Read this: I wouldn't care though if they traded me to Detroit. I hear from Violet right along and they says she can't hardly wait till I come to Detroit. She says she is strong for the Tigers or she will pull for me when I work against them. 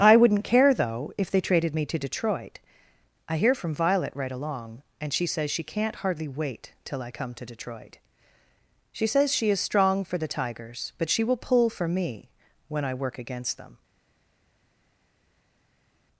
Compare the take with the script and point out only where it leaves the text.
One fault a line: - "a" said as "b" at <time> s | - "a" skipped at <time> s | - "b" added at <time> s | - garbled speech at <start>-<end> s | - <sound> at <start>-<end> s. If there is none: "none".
- "they" said as "she" at 5.1 s
- "or" said as "but" at 11.0 s